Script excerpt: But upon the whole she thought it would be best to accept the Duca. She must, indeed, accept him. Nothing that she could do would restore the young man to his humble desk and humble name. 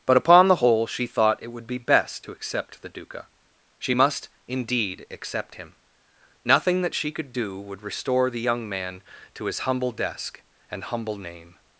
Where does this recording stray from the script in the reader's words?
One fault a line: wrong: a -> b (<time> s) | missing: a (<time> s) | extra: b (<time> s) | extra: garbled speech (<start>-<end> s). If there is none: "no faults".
no faults